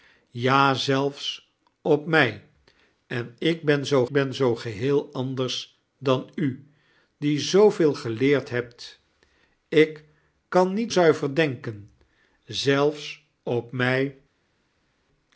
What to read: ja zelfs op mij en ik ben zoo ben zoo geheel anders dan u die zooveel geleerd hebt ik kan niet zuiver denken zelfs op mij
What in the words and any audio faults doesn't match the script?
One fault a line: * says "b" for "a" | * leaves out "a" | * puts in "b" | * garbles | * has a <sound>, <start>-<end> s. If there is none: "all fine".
all fine